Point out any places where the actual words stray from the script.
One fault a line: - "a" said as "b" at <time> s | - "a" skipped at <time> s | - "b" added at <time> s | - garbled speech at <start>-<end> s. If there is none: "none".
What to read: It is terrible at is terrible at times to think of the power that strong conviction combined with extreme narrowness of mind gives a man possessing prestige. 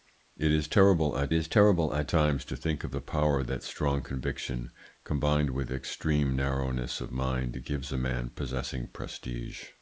none